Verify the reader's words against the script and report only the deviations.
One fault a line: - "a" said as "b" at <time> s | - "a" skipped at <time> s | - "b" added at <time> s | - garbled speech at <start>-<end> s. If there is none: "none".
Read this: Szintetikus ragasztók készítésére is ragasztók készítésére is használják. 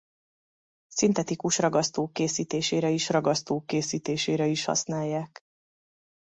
none